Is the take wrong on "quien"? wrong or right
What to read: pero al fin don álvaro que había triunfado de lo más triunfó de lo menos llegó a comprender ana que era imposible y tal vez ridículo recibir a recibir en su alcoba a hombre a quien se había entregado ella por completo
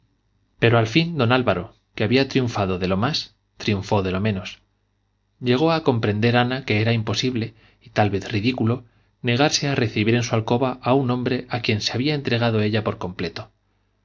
right